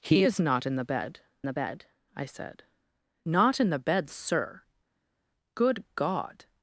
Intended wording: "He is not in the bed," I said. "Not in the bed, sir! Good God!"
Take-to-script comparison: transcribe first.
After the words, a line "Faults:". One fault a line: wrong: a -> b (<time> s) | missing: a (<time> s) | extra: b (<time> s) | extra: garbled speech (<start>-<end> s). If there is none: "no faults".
"He is not in the bed the bed," I said. "Not in the bed, sir! Good God!"
Faults:
extra: the bed (1.4 s)